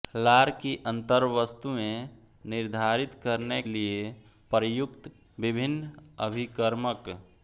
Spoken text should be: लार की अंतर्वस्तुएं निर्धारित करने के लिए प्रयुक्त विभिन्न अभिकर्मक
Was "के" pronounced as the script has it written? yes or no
no